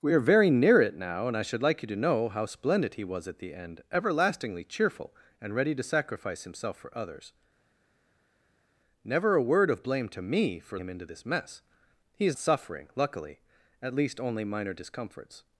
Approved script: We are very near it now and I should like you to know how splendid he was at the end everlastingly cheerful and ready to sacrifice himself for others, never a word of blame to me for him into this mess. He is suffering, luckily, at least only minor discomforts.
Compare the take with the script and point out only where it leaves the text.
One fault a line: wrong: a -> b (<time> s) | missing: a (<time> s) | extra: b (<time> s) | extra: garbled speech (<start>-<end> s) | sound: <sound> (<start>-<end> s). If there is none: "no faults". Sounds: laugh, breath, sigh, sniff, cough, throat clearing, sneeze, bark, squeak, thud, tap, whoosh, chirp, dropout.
no faults